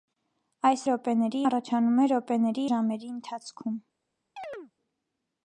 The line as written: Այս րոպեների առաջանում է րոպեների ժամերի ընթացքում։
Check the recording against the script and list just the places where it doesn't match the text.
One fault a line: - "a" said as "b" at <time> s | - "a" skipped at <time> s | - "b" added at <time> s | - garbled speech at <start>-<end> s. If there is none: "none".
none